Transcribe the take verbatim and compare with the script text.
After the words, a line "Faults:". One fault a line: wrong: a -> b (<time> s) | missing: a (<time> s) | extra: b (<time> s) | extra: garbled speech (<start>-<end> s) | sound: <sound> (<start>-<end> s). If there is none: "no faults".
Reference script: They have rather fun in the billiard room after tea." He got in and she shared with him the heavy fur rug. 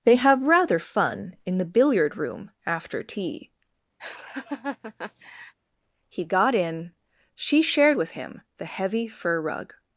They have rather fun in the billiard room after tea." He got in she shared with him the heavy fur rug.
Faults:
sound: laugh (4.0-5.5 s)
missing: and (6.9 s)